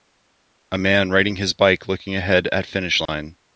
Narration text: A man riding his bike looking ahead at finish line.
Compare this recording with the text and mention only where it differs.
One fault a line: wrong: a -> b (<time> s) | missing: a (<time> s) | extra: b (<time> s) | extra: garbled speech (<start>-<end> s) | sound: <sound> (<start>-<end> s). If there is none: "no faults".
sound: dropout (3.1-3.1 s)